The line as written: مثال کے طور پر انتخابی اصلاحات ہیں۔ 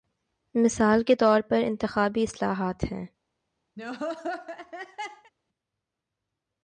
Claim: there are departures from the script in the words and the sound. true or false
true